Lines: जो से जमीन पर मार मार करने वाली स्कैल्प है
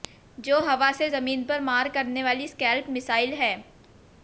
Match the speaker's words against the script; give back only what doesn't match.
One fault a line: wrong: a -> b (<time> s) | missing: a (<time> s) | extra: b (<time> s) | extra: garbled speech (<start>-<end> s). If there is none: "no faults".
extra: हवा (0.6 s)
missing: मार (1.9 s)
extra: मिसाइल (2.9 s)